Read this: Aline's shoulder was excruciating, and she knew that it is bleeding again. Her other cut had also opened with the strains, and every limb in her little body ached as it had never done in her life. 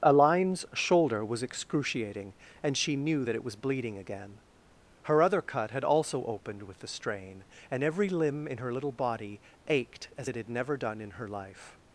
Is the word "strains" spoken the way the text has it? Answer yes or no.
no